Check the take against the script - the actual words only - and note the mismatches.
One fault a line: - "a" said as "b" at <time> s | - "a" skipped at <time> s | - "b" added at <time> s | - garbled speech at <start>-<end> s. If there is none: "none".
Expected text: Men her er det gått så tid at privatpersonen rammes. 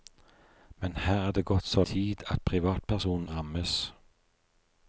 none